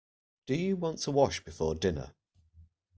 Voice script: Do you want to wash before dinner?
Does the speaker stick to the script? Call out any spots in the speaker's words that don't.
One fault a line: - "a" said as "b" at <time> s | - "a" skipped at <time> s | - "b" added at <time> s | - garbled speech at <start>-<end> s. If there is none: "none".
none